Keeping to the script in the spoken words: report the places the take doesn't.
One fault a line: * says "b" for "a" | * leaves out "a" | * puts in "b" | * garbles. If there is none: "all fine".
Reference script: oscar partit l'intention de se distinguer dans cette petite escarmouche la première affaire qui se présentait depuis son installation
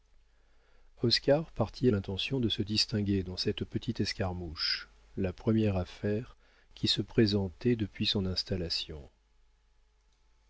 all fine